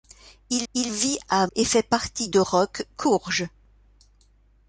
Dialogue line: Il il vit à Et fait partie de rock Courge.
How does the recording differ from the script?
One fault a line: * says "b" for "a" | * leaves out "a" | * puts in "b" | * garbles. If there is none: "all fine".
all fine